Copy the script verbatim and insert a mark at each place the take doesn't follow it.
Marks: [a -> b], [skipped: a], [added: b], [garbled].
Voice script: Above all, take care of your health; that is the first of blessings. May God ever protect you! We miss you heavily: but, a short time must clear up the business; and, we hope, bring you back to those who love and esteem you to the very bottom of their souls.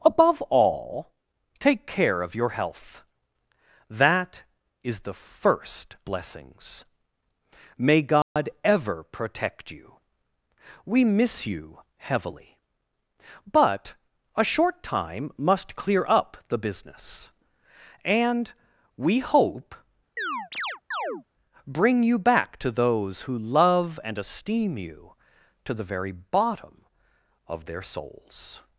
Above all, take care of your health; that is the first [skipped: of] blessings. May God ever protect you! We miss you heavily: but, a short time must clear up the business; and, we hope, bring you back to those who love and esteem you to the very bottom of their souls.